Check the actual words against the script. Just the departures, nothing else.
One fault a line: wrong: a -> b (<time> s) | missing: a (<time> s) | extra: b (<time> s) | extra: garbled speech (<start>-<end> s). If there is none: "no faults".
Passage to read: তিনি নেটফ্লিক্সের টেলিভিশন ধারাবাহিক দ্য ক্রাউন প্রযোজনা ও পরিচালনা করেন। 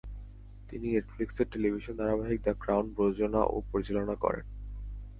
no faults